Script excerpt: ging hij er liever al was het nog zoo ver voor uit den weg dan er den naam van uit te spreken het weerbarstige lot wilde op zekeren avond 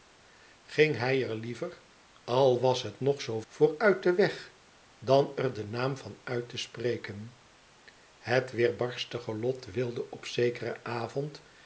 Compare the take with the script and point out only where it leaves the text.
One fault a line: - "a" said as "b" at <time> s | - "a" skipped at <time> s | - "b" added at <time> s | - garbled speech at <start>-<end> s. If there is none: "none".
- "ver" skipped at 3.4 s